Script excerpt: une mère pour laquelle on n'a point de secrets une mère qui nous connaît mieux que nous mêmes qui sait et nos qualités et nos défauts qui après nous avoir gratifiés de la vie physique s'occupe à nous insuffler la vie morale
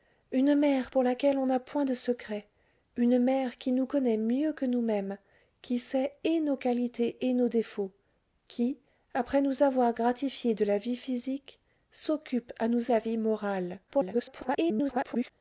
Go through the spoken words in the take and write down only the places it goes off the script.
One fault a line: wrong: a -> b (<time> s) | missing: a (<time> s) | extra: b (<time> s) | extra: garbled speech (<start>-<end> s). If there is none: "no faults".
missing: insuffler (12.9 s)
extra: garbled speech (13.9-15.3 s)